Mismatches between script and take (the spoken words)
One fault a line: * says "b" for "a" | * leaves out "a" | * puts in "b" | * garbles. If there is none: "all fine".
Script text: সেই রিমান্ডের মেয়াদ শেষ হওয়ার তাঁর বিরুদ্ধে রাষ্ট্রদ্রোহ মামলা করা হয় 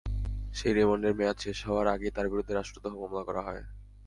* puts in "আগেই"